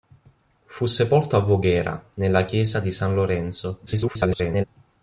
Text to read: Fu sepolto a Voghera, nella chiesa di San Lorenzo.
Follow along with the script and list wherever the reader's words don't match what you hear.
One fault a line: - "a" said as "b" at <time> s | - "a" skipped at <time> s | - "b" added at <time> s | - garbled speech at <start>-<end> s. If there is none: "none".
- garbled speech at 3.9-4.6 s